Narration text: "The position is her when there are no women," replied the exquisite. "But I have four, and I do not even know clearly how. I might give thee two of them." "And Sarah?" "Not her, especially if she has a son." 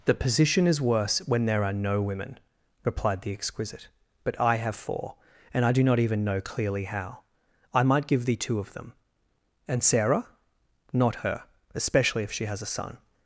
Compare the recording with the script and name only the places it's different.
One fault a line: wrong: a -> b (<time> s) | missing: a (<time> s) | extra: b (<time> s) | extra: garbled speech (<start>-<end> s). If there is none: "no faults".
wrong: her -> worse (0.8 s)